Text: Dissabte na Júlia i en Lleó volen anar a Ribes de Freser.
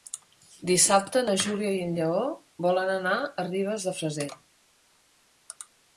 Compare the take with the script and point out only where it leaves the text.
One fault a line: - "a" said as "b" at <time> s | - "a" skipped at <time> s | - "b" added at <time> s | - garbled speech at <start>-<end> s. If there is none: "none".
none